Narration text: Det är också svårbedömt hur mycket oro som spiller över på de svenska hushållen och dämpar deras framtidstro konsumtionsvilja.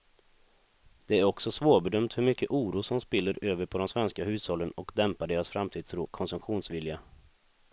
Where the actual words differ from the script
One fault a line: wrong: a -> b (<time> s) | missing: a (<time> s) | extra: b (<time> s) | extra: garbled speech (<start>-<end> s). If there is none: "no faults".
no faults